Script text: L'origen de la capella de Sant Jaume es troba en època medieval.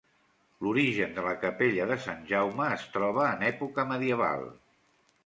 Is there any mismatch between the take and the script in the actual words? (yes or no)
no